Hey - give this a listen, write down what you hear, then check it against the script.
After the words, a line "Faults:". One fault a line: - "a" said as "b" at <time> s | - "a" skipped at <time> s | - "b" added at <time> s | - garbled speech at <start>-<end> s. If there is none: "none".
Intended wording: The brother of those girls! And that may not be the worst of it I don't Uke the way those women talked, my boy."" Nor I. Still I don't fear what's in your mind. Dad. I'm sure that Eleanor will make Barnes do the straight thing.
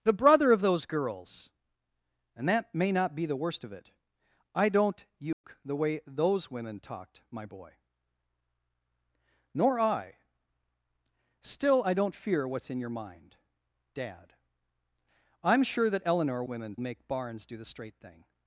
The brother of those girls! And that may not be the worst of it I don't Uke the way those women talked, my boy."" Nor I. Still I don't fear what's in your mind. Dad. I'm sure that Eleanor women make Barnes do the straight thing.
Faults:
- "will" said as "women" at 16.5 s